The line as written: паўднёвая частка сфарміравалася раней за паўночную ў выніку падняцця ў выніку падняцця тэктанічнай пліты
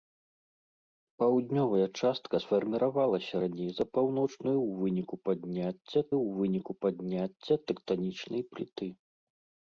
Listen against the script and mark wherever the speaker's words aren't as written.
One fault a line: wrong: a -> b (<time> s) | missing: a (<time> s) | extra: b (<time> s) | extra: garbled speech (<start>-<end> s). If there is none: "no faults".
no faults